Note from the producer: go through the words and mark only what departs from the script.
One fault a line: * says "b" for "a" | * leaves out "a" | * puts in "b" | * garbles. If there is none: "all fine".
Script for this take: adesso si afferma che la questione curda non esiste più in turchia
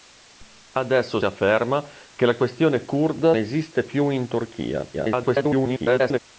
* leaves out "si"
* leaves out "non"
* garbles